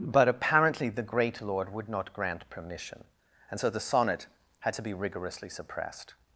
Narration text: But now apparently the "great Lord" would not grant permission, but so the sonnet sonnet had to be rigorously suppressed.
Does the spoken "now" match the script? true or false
false